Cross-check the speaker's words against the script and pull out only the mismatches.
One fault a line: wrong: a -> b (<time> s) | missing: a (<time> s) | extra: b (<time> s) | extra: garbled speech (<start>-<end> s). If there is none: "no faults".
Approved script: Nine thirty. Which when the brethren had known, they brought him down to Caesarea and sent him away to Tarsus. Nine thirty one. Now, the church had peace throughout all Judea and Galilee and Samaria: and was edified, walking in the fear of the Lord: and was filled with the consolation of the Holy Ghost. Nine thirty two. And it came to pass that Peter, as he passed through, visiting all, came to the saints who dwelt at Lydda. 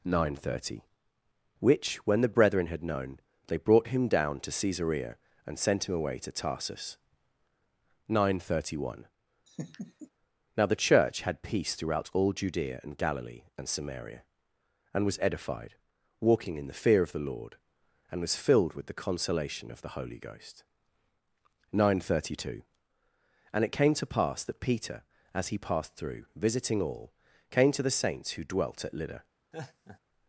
no faults